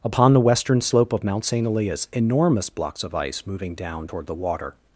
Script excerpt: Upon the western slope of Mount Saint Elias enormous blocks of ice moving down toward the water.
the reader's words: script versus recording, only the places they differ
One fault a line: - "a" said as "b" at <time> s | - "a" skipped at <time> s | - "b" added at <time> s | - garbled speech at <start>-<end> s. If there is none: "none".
none